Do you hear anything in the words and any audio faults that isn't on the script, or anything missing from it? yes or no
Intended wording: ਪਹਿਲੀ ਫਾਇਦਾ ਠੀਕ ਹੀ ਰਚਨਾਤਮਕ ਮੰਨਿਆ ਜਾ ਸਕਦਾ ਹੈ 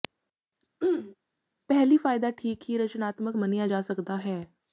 yes